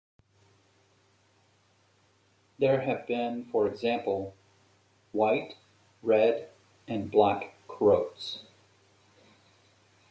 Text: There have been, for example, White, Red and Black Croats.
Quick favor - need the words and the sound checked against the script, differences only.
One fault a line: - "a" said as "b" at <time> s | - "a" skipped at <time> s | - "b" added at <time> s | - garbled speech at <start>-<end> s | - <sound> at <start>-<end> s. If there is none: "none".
none